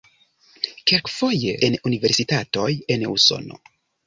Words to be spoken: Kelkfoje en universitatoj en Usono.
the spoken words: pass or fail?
pass